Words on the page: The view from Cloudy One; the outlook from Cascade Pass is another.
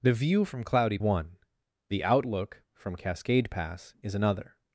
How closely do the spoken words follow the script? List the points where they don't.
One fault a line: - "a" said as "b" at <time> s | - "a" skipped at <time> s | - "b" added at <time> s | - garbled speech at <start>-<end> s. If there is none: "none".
none